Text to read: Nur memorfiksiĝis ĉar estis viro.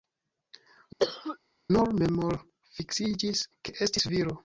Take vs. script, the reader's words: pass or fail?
fail